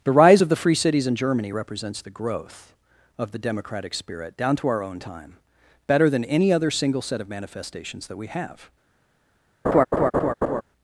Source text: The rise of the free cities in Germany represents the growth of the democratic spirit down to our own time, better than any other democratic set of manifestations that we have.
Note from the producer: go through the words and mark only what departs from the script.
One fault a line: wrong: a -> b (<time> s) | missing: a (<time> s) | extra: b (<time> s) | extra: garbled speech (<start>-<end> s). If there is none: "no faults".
wrong: democratic -> single (6.7 s)